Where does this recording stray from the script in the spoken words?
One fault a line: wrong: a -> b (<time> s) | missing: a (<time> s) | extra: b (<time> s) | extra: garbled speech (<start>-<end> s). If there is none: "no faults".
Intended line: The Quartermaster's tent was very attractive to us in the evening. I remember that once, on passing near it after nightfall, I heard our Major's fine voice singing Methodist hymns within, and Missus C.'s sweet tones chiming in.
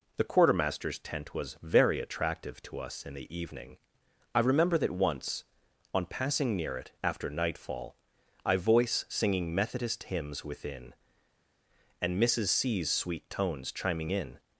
missing: heard our Major's fine (8.6 s)